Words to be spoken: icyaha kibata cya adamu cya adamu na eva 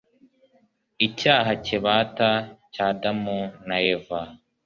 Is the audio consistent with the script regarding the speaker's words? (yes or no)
no